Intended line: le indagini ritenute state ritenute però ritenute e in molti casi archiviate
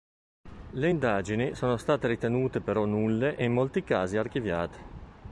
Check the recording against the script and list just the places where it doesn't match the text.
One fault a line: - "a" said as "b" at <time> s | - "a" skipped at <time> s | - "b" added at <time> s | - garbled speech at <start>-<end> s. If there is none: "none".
- "ritenute" said as "sono" at 1.5 s
- "ritenute" said as "nulle" at 2.9 s